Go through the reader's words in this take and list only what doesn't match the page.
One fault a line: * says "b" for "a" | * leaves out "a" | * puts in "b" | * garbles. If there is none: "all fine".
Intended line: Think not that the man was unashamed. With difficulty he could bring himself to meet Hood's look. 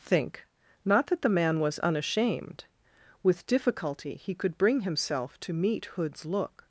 all fine